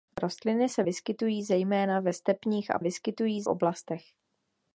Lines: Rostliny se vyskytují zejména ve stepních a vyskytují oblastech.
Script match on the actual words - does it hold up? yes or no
yes